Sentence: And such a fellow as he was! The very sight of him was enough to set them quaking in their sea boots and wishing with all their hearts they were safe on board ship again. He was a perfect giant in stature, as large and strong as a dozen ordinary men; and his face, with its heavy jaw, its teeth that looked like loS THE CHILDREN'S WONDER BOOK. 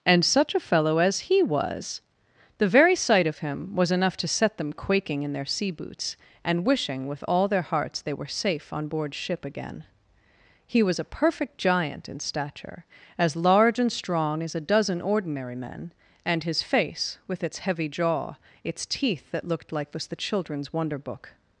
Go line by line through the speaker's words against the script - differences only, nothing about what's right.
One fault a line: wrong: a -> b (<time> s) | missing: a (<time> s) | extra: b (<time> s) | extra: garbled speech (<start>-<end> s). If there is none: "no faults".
wrong: loS -> was (19.9 s)